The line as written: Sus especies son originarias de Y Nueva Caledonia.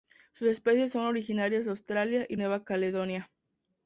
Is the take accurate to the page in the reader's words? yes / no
no